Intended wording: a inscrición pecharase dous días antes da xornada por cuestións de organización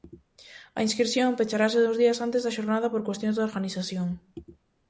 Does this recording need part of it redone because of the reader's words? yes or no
no